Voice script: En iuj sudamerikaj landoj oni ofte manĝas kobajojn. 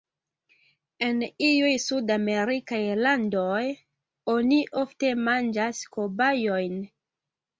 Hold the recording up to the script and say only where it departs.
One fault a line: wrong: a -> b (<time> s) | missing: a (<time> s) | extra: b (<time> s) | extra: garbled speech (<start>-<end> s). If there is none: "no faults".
no faults